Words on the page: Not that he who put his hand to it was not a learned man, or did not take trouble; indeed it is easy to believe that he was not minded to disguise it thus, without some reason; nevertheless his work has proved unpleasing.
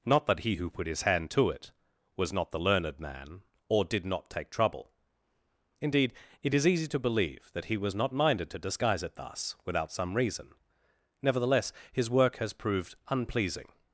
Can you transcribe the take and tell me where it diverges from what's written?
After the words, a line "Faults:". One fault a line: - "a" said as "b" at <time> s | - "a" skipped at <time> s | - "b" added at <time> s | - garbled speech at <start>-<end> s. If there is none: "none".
Not that he who put his hand to it was not the learned man, or did not take trouble; indeed it is easy to believe that he was not minded to disguise it thus, without some reason; nevertheless his work has proved unpleasing.
Faults:
- "a" said as "the" at 2.5 s